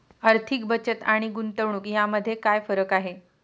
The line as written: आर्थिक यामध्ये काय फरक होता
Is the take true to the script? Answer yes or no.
no